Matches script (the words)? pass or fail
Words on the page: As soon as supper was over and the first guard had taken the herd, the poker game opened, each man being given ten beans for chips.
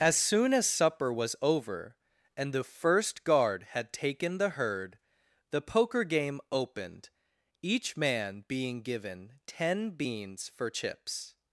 pass